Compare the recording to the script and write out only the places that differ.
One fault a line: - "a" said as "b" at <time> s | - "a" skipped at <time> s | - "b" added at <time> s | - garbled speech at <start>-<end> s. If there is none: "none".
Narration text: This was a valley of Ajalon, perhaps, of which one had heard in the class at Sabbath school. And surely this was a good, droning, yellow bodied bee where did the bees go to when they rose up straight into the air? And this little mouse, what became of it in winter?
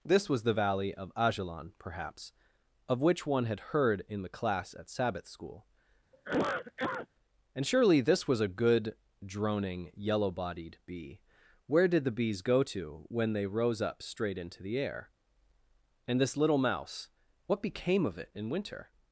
- "a" said as "the" at 0.4 s